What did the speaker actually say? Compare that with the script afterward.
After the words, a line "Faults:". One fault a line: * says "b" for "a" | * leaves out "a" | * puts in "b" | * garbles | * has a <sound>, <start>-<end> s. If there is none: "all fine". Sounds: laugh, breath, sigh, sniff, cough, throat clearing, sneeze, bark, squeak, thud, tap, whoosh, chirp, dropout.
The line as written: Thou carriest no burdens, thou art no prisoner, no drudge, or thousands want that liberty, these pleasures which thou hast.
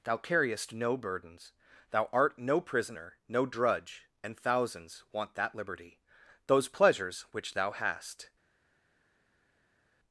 Thou carriest no burdens, thou art no prisoner, no drudge, and thousands want that liberty, those pleasures which thou hast.
Faults:
* says "and" for "or"
* says "those" for "these"